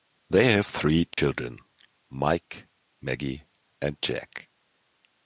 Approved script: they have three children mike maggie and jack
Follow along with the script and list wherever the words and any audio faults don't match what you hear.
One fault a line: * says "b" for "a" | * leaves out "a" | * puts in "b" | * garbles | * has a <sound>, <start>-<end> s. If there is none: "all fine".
* has a dropout, 1.1-1.2 s